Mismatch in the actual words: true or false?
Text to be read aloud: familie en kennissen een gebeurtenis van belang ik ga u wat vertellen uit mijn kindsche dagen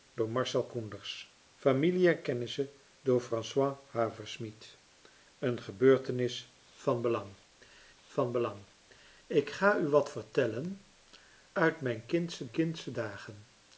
true